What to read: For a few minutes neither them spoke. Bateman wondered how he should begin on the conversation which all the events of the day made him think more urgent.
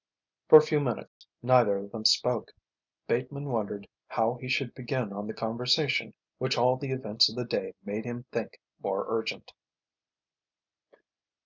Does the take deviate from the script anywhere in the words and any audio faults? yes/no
yes